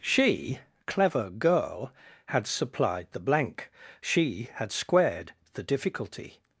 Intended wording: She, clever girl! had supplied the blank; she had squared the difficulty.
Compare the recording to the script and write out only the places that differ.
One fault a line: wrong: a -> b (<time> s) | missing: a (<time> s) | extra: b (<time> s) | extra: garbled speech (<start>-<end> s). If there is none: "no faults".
no faults